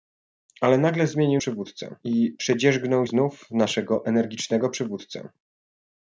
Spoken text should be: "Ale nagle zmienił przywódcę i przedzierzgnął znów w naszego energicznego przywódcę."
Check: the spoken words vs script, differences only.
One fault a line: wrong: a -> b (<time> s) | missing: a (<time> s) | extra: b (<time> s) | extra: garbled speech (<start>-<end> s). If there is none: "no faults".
no faults